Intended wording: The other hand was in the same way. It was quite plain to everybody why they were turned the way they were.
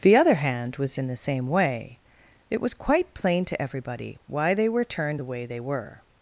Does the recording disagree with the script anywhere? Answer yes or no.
no